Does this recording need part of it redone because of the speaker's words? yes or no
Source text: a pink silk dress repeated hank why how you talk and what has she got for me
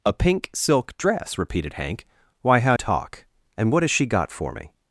yes